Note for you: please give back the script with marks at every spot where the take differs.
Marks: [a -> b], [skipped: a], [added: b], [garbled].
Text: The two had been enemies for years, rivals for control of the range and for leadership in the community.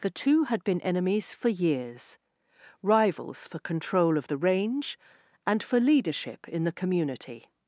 The two had been enemies for years, rivals for control of the range and for leadership in the community.